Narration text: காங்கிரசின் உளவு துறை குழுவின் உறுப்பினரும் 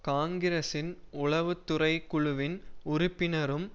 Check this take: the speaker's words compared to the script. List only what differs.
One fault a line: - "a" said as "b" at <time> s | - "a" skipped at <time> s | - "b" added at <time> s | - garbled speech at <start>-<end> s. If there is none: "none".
none